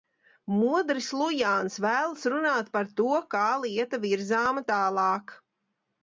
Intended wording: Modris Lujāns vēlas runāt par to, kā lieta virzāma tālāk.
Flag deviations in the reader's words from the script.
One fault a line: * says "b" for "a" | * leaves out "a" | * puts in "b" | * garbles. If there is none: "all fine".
all fine